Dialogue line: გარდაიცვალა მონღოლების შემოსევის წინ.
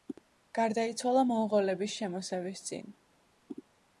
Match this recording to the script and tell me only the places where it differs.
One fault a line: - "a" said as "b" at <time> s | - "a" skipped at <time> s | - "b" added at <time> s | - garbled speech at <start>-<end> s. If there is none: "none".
none